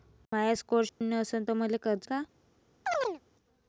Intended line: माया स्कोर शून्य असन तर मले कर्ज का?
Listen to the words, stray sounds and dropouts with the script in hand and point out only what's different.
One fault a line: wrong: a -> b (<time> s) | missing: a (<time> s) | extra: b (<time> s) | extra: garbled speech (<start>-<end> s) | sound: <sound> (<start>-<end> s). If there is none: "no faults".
sound: dropout (0.9-1.0 s)
sound: chirp (2.9-3.2 s)